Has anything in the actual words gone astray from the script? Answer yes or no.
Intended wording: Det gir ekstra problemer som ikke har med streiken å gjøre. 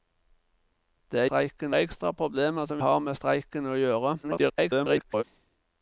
yes